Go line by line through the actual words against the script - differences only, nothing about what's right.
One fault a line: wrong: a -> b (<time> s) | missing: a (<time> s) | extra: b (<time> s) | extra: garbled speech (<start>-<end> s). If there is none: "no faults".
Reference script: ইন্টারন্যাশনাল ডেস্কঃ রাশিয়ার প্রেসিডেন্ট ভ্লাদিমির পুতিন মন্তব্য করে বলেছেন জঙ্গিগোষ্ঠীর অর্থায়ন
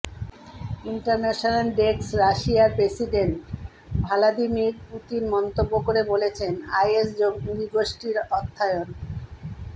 extra: আইএস (6.8 s)